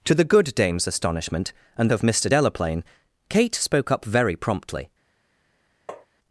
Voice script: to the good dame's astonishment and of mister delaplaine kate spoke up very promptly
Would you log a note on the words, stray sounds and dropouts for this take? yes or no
yes